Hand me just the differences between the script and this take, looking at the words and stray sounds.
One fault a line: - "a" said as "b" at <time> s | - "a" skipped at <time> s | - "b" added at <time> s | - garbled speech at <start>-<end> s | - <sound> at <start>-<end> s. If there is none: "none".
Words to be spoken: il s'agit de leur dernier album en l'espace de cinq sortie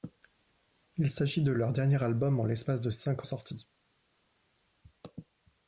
none